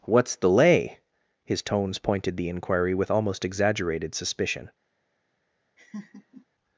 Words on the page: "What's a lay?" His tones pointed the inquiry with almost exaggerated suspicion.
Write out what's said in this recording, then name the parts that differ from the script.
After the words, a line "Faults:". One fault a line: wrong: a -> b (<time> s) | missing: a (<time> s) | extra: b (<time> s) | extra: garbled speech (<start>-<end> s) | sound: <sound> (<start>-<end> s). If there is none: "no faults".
"What's the lay?" His tones pointed the inquiry with almost exaggerated suspicion.
Faults:
wrong: a -> the (0.3 s)
sound: laugh (5.8-6.5 s)